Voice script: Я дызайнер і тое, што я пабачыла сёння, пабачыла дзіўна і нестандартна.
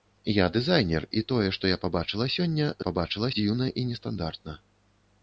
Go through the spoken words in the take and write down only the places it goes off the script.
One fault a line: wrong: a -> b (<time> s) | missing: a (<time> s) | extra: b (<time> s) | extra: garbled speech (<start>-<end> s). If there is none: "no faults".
no faults